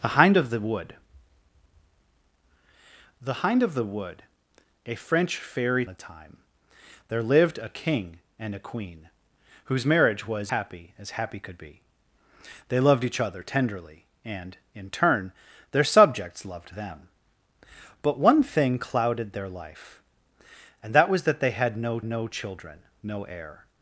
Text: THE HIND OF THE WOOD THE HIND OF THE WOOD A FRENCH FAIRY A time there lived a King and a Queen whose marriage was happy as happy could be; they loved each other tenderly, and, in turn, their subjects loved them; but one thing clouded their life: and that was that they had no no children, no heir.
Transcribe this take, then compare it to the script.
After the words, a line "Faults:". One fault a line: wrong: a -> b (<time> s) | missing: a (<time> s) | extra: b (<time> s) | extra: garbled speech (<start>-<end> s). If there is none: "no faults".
THE HIND OF THE WOOD THE HIND OF THE WOOD A FRENCH FAIRY A time there lived a King and a Queen whose marriage was happy as happy could be; they loved each other tenderly, and, in turn, their subjects loved them; but one thing clouded their life: and that was that they had no no children, no heir.
Faults:
no faults